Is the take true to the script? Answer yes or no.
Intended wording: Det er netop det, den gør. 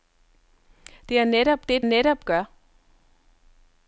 no